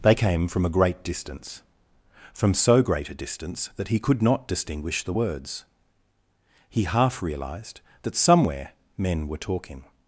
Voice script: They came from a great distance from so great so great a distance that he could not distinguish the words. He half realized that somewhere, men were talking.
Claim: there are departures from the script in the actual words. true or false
true